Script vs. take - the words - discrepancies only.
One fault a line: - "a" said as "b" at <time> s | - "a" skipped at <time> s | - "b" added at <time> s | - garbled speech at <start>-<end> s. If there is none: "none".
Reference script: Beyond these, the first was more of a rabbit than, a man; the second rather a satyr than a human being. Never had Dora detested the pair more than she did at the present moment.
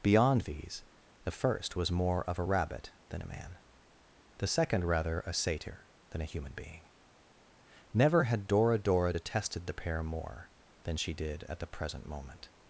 - "Dora" added at 8.8 s